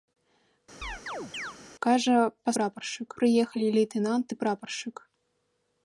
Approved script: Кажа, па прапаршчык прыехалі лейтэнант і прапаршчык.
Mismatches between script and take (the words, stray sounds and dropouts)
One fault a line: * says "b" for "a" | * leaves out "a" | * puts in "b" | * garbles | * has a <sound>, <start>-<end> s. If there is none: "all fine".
* has a chirp, 0.8-1.6 s